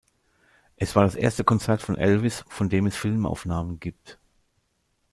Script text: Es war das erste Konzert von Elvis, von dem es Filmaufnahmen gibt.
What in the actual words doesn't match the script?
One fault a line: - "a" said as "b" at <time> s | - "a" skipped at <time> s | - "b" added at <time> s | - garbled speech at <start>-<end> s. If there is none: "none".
none